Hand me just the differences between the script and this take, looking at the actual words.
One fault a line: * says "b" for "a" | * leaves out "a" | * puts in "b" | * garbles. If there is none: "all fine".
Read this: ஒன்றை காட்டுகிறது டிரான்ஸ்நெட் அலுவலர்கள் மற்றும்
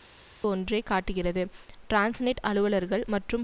all fine